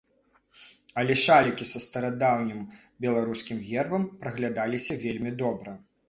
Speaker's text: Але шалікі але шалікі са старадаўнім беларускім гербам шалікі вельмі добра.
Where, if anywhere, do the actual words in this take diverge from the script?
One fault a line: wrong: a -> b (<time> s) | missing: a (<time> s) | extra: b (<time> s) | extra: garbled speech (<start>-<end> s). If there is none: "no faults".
missing: але шалікі (1.7 s)
wrong: шалікі -> праглядаліся (4.2 s)